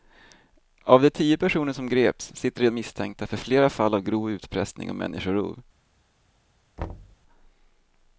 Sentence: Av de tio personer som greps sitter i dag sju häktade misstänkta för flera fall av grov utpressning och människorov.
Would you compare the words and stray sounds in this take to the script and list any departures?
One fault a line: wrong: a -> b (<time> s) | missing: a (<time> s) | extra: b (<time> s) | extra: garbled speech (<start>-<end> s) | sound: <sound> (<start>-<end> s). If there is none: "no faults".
missing: dag sju häktade (2.7 s)
sound: thud (6.8-7.2 s)